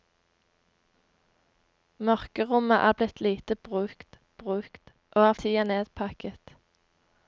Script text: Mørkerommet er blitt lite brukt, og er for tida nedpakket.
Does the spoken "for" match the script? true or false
false